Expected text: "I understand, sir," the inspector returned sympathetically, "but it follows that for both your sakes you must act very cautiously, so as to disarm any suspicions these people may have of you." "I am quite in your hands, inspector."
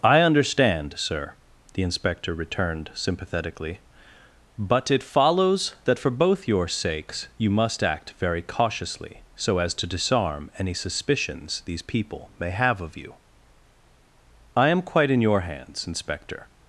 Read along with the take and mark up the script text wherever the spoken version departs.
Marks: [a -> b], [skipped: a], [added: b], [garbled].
"I understand, sir," the inspector returned sympathetically, "but it follows that for both your sakes you must act very cautiously, so as to disarm any suspicions these people may have of you." "I am quite in your hands, inspector."